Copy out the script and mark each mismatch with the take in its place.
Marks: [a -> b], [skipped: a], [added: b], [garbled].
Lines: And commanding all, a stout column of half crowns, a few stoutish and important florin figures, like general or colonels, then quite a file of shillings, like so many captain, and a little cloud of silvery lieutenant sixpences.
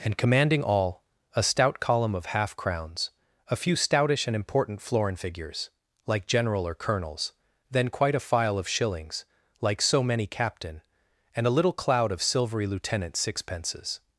And commanding all, a stout column of half crowns, a few stoutish and important florin figures, like general or colonels, then quite a file of shillings, like so many captain, and a little cloud of silvery lieutenant sixpences.